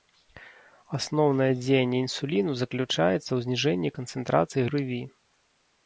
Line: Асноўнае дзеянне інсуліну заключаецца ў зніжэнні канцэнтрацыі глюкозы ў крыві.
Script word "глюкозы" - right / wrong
wrong